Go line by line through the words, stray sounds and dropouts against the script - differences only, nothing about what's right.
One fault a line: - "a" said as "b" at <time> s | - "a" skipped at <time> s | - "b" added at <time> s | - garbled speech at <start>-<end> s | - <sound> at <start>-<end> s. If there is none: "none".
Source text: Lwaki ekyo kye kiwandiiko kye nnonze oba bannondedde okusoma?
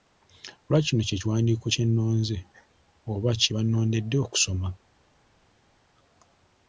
- "ekyo" said as "kino" at 0.9 s
- "kye" added at 3.4 s